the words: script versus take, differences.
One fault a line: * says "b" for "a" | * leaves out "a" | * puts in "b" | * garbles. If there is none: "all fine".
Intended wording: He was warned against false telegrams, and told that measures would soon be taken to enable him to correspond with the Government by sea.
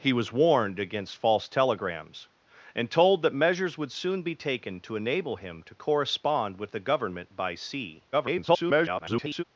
* garbles